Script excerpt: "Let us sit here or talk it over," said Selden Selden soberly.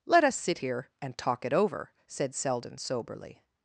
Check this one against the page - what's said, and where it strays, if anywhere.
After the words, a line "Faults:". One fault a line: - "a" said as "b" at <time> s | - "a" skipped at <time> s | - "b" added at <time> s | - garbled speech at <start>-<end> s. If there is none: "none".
"Let us sit here and talk it over," said Selden soberly.
Faults:
- "or" said as "and" at 1.0 s
- "Selden" skipped at 2.8 s